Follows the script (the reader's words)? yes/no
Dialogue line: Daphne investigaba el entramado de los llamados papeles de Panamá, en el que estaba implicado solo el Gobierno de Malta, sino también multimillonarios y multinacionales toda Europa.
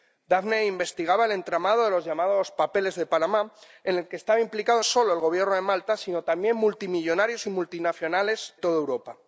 yes